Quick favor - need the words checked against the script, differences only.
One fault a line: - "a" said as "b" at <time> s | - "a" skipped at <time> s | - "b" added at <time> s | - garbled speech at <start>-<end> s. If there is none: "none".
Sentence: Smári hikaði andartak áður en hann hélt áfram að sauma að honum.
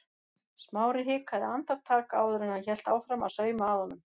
none